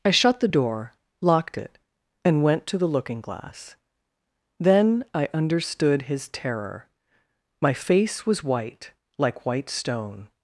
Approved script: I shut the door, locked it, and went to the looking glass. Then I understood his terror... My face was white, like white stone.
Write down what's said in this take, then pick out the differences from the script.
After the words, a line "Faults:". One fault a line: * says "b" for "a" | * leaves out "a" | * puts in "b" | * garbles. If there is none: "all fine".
I shut the door, locked it, and went to the looking glass. Then I understood his terror... My face was white, like white stone.
Faults:
all fine